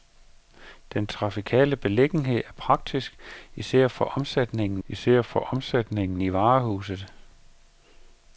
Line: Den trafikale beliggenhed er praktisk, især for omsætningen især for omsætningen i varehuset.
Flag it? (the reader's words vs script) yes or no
no